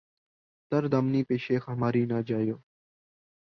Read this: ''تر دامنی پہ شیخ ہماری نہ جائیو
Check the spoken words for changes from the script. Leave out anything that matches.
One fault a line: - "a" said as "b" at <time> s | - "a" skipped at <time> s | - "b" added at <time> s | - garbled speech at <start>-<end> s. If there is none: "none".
none